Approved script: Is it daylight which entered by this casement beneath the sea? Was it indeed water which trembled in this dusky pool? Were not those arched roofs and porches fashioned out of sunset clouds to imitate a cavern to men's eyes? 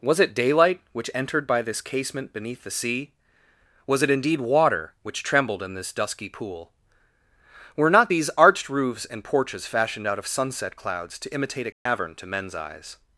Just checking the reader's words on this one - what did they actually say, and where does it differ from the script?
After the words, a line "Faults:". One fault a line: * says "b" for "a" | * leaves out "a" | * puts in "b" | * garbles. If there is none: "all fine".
Was it daylight which entered by this casement beneath the sea? Was it indeed water which trembled in this dusky pool? Were not these arched roofs and porches fashioned out of sunset clouds to imitate a cavern to men's eyes?
Faults:
* says "Was" for "Is"
* says "these" for "those"